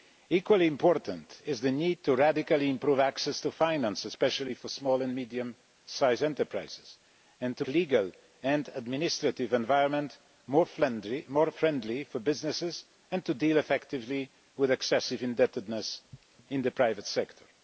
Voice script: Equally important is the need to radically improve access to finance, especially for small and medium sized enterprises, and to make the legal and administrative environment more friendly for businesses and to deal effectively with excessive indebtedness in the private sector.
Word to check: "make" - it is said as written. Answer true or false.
false